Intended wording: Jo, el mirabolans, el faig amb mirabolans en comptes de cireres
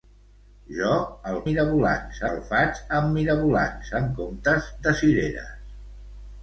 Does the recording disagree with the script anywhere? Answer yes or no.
no